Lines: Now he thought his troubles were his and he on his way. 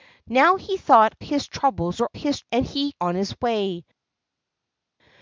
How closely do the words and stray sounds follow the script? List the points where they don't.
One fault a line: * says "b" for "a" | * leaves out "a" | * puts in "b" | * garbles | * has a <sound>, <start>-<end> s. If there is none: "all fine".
all fine